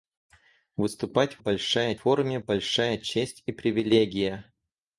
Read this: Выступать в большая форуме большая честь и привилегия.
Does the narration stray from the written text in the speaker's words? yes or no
no